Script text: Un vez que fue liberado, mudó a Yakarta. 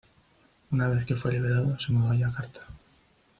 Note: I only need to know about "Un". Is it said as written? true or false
false